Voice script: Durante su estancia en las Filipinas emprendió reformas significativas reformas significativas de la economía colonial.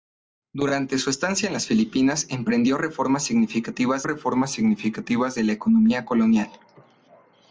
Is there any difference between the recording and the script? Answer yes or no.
no